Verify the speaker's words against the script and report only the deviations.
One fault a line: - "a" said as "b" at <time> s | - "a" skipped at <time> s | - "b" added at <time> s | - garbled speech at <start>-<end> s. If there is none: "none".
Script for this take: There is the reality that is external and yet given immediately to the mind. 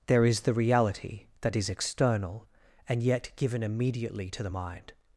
none